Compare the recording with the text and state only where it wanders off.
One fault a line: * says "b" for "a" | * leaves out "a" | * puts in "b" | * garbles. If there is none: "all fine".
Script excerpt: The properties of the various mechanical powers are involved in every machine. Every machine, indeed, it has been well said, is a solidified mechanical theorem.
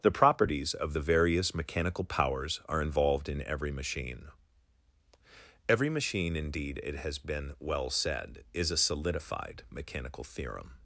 all fine